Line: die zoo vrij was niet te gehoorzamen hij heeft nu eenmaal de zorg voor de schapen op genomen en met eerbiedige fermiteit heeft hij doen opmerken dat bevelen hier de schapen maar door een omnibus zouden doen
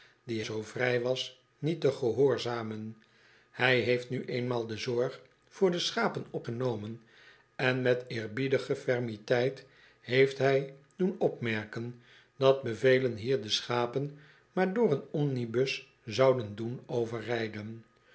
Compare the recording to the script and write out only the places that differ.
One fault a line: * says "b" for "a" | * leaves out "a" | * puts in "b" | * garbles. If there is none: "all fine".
all fine